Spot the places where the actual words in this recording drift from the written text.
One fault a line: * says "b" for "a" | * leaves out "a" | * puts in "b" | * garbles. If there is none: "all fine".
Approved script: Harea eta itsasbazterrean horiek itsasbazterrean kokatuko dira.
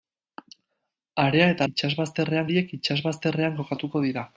all fine